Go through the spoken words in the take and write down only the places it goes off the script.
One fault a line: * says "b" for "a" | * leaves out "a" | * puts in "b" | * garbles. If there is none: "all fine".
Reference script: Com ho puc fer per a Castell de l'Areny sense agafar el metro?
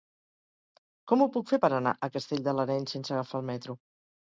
* puts in "anar"